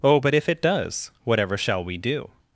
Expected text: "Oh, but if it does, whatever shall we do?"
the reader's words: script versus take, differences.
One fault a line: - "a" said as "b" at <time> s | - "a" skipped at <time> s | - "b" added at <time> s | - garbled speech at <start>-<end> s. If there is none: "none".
none